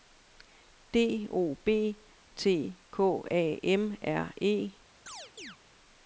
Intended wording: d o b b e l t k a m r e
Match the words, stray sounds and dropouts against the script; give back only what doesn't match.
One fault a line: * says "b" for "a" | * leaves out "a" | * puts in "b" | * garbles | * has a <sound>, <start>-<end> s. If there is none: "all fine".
* leaves out "b e l"
* has a chirp, 5.1-5.6 s